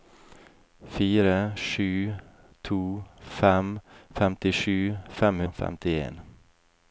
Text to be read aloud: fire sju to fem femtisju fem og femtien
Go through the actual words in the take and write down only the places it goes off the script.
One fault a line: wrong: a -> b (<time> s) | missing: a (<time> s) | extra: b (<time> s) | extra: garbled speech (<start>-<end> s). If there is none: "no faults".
no faults